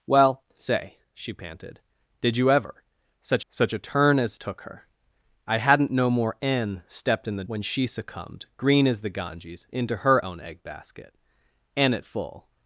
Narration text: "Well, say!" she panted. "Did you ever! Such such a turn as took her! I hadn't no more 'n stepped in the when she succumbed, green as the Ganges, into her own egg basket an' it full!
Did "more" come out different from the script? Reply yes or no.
no